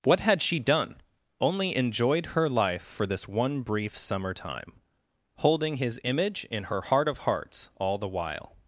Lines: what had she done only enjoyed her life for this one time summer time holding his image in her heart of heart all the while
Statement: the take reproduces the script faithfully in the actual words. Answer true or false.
false